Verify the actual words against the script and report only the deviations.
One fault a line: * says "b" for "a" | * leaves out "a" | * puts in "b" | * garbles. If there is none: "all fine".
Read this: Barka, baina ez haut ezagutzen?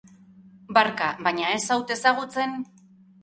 all fine